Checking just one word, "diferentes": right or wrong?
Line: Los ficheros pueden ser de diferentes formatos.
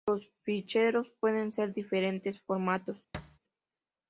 right